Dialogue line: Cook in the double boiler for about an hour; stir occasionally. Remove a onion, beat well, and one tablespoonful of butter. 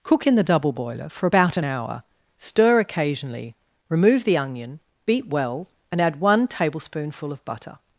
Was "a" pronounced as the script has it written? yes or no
no